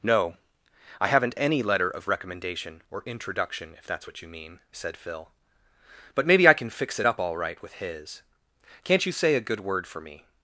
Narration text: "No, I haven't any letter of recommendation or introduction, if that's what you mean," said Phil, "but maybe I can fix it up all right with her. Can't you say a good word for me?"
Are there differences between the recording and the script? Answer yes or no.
yes